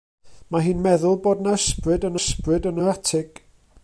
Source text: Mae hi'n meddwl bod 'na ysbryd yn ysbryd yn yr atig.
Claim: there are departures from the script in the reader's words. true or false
false